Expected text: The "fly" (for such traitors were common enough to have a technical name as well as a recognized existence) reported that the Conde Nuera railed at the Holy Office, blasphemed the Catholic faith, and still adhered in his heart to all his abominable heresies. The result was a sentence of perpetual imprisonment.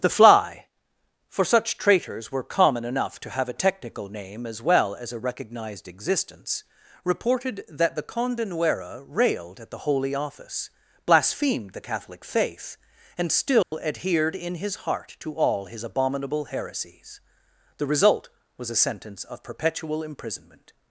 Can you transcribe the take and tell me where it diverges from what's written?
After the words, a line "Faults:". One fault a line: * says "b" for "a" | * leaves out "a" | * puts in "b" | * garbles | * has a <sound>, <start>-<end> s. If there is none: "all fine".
The "fly" (for such traitors were common enough to have a technical name as well as a recognized existence) reported that the Conde Nuera railed at the Holy Office, blasphemed the Catholic faith, and still adhered in his heart to all his abominable heresies. The result was a sentence of perpetual imprisonment.
Faults:
* has a dropout, 13.6-13.7 s